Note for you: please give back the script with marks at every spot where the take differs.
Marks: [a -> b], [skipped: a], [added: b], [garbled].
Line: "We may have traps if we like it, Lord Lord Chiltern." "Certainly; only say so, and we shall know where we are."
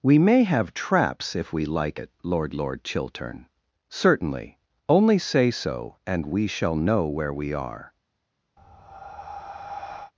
"We may have traps if we like it, Lord Lord Chiltern." "Certainly; only say so, and we shall know where we are."